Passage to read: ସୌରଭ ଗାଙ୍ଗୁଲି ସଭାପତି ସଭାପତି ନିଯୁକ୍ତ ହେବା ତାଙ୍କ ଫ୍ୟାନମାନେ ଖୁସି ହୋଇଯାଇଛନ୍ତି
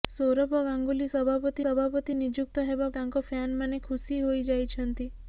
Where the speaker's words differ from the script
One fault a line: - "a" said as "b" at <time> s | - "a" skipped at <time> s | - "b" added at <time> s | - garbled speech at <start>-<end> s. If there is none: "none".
none